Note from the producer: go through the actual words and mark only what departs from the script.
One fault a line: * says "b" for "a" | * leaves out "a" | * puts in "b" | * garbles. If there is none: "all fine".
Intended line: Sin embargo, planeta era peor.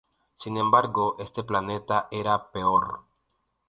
* puts in "este"